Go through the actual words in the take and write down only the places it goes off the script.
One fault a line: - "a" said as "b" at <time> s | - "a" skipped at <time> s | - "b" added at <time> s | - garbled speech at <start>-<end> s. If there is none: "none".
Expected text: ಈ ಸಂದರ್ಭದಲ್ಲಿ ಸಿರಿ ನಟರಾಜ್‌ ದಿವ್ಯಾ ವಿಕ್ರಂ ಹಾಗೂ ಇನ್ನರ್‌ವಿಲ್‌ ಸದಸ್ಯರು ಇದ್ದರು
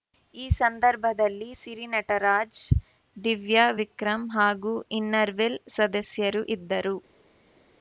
none